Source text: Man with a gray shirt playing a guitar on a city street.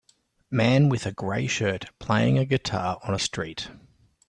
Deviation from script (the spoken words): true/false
true